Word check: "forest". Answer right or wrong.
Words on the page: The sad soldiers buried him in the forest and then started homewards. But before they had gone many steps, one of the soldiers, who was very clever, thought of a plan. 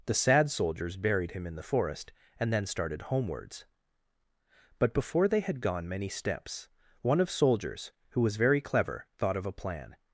right